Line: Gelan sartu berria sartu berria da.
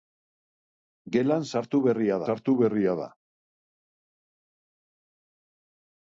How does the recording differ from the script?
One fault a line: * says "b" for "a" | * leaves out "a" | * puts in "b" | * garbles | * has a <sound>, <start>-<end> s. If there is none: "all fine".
all fine